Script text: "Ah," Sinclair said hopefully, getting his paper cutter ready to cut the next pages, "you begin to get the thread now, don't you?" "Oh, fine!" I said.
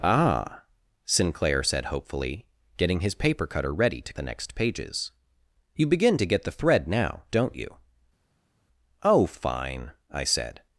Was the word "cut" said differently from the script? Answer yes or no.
yes